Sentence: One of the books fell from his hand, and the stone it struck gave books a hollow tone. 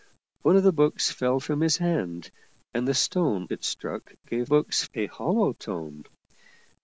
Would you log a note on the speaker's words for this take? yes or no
no